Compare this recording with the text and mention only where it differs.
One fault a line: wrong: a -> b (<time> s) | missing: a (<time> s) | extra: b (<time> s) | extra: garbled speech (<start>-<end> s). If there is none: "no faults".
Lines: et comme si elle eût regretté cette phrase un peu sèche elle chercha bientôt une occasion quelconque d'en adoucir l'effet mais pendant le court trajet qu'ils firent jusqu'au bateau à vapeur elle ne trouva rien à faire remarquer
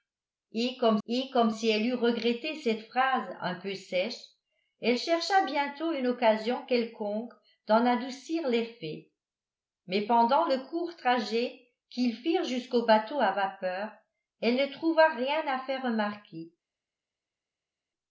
extra: et comme (1.1 s)